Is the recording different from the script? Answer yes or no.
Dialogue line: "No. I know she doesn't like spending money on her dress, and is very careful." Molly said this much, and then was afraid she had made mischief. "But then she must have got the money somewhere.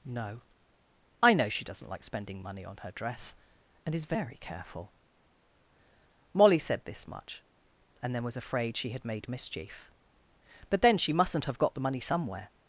yes